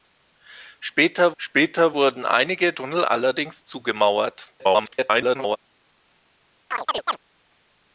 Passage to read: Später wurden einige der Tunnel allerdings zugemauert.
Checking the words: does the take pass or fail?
fail